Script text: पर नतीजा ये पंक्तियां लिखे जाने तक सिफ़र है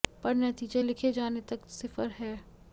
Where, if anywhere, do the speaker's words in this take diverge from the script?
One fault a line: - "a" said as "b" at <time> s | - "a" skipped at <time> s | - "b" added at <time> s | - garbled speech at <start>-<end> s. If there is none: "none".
- "ये पंक्तियां" skipped at 0.8 s